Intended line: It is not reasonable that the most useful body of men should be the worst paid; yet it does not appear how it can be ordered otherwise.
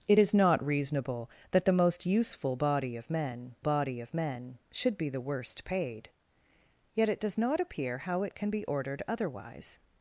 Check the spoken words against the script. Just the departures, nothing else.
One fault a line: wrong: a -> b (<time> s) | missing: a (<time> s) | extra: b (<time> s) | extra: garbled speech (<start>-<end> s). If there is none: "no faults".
extra: body of men (3.6 s)